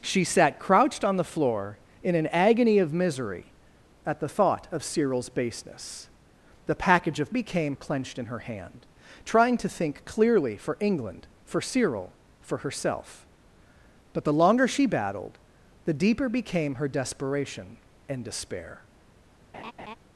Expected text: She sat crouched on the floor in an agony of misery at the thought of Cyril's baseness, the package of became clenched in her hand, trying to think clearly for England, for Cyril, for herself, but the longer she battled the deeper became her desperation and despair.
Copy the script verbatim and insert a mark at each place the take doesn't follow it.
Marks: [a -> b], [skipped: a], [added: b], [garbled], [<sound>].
She sat crouched on the floor in an agony of misery at the thought of Cyril's baseness, the package of became clenched in her hand, trying to think clearly for England, for Cyril, for herself, but the longer she battled the deeper became her desperation and despair. [laugh]